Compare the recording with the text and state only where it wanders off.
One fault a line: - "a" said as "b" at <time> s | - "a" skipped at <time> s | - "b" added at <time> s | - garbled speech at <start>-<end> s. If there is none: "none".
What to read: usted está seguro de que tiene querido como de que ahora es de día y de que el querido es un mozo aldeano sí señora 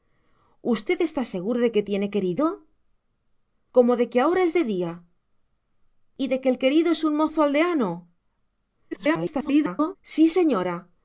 - garbled speech at 8.9-10.0 s